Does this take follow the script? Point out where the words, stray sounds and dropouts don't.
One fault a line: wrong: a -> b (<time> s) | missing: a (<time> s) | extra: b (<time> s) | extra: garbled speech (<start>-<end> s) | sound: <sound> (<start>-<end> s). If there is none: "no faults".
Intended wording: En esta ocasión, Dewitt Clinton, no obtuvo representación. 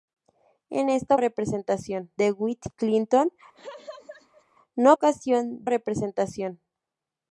wrong: ocasión -> representación (1.2 s)
sound: laugh (3.5-4.4 s)
wrong: obtuvo -> ocasión (4.9 s)